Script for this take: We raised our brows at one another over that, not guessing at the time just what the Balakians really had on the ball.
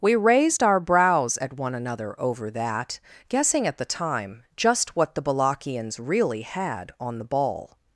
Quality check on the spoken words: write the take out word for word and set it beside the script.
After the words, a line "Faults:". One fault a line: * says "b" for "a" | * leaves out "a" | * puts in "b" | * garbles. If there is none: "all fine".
We raised our brows at one another over that, guessing at the time just what the Balakians really had on the ball.
Faults:
* leaves out "not"